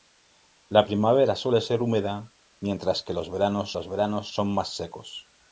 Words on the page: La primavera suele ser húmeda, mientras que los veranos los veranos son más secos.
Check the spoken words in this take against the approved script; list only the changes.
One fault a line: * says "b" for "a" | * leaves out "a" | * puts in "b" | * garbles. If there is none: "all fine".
all fine